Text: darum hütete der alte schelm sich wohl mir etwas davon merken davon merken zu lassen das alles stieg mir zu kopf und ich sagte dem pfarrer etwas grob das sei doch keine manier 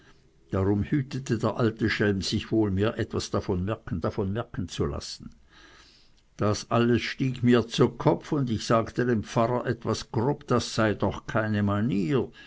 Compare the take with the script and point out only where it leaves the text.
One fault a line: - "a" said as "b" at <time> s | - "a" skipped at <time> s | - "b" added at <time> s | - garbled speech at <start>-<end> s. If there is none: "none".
none